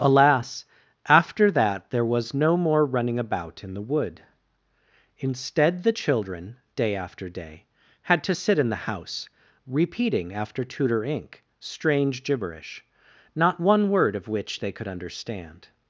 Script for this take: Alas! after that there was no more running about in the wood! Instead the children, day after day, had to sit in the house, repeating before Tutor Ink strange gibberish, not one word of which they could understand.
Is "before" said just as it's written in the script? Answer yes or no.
no